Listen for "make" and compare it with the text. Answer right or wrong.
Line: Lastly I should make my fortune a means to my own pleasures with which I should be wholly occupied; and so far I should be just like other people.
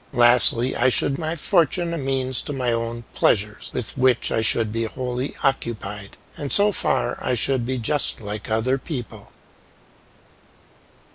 wrong